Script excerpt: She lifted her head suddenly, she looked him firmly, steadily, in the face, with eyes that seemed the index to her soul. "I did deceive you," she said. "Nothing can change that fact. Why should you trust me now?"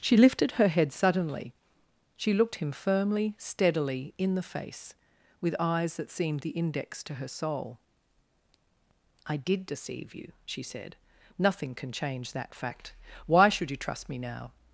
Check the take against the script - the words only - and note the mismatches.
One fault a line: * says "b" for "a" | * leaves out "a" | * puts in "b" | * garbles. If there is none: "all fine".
all fine